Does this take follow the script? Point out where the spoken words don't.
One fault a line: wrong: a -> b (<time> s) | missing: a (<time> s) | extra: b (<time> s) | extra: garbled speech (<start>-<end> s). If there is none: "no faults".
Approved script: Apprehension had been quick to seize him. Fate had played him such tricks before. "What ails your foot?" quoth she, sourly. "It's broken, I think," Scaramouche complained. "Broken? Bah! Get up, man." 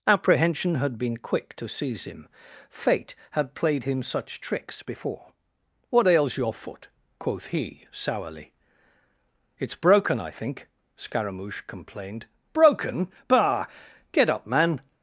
wrong: she -> he (7.5 s)